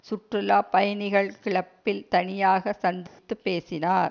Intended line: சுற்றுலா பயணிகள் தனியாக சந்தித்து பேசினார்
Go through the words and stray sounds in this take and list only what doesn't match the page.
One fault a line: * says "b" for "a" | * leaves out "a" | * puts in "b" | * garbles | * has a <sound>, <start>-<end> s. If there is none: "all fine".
* puts in "கிளப்பில்"
* has a dropout, 3.1-3.2 s